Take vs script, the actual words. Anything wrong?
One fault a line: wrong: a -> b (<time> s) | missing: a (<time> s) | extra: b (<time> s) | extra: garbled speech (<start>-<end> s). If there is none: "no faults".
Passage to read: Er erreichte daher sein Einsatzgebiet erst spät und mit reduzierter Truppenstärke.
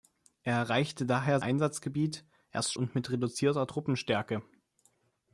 missing: sein (1.4 s)
missing: spät (2.7 s)